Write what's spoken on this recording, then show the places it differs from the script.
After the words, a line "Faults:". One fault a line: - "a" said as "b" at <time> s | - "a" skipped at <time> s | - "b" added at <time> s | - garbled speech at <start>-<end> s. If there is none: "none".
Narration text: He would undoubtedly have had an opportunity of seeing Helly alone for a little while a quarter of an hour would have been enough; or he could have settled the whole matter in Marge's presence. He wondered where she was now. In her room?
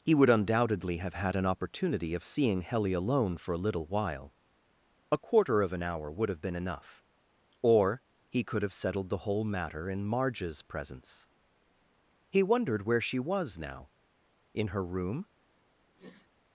He would undoubtedly have had an opportunity of seeing Helly alone for a little while a quarter of an hour would have been enough; or he could have settled the whole matter in Marge's presence. He wondered where she was now. In her room?
Faults:
none